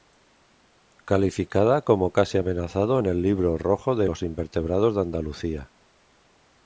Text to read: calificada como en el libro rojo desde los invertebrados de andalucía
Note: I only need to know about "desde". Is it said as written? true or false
false